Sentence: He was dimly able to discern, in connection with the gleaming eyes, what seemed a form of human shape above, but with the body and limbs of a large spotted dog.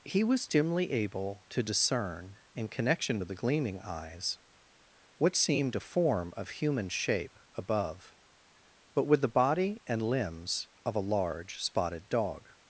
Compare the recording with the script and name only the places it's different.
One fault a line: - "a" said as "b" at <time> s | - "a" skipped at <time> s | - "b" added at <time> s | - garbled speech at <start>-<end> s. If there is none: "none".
none